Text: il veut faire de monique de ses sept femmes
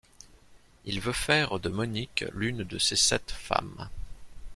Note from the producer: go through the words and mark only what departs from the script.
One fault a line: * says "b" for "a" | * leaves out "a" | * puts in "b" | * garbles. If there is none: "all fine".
* puts in "l'une"